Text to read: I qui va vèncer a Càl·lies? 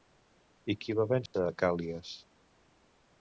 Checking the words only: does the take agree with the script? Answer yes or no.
yes